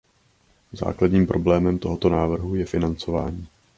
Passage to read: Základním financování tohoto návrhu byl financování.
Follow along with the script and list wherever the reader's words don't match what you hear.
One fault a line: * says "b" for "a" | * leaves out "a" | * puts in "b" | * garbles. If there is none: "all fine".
* says "problémem" for "financování"
* says "je" for "byl"